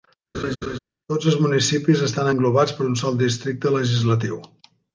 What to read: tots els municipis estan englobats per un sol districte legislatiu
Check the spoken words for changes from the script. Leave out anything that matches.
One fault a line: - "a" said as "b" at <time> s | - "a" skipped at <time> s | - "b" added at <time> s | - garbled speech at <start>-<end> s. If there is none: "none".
none